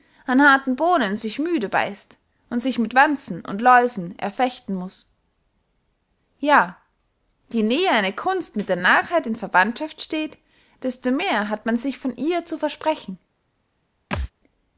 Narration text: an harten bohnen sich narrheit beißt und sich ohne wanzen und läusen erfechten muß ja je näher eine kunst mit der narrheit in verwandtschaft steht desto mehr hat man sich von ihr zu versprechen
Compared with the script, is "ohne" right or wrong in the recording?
wrong